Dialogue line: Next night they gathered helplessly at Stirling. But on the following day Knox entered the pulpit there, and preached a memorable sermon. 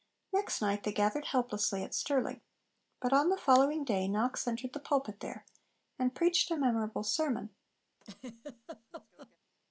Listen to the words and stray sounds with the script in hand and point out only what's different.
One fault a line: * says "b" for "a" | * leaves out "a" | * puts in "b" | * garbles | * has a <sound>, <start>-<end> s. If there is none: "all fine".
* has a laugh, 8.0-9.4 s